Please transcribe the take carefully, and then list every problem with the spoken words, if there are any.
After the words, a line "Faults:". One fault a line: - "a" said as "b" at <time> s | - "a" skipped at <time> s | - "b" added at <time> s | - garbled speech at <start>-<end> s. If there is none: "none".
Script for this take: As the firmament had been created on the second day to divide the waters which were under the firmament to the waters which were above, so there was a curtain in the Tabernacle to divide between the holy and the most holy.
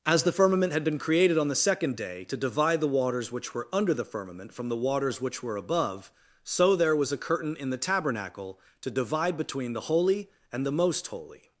As the firmament had been created on the second day to divide the waters which were under the firmament from the waters which were above, so there was a curtain in the Tabernacle to divide between the holy and the most holy.
Faults:
- "to" said as "from" at 4.5 s